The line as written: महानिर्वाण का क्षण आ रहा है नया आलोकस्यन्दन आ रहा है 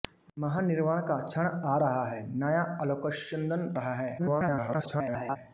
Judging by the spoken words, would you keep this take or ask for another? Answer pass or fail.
fail